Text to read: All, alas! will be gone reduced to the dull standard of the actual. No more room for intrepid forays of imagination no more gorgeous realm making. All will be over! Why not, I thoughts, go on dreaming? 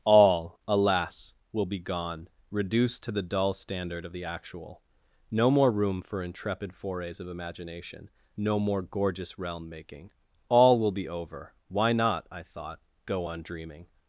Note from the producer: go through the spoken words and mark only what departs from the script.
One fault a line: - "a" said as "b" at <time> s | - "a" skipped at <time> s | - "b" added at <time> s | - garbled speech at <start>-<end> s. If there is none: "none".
- "thoughts" said as "thought" at 12.4 s